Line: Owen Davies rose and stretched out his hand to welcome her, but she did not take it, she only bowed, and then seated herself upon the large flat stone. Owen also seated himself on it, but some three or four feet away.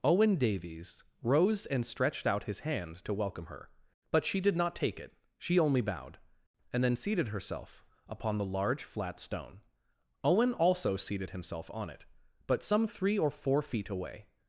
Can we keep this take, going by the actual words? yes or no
yes